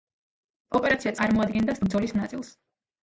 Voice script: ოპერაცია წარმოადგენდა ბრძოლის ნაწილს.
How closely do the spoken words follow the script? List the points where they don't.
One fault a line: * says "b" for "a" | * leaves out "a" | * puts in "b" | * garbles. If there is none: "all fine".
all fine